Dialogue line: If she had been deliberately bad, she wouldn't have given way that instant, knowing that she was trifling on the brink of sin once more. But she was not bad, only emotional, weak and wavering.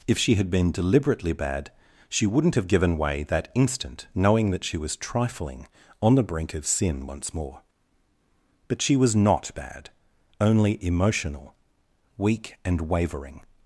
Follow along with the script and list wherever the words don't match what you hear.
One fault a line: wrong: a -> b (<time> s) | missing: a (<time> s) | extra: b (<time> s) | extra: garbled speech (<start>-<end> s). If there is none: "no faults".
no faults